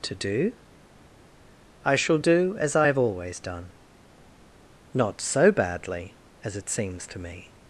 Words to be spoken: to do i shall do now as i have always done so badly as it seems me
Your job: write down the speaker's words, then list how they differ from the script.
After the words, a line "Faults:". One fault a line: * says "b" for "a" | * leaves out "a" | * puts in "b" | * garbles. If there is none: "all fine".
to do i shall do as i have always done not so badly as it seems to me
Faults:
* leaves out "now"
* puts in "not"
* puts in "to"